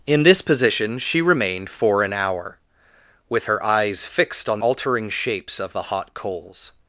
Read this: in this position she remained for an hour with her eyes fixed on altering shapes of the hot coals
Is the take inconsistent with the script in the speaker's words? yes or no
no